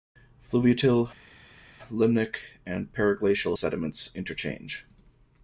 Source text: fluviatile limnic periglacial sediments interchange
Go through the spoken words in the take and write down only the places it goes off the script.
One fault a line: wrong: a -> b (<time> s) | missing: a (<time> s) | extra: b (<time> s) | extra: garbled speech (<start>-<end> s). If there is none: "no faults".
extra: and (2.7 s)